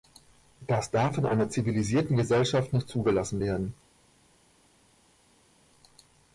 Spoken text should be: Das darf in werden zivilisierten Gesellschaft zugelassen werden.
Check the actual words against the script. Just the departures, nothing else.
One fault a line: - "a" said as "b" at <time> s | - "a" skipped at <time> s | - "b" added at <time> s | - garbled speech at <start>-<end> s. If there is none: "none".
- "werden" said as "einer" at 1.3 s
- "nicht" added at 2.7 s